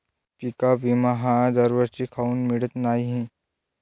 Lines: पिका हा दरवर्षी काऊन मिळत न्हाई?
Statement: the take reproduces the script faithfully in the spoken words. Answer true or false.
false